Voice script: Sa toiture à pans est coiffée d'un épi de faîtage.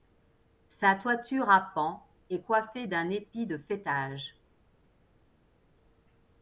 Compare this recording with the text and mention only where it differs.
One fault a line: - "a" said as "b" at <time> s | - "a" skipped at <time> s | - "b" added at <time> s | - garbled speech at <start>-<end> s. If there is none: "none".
none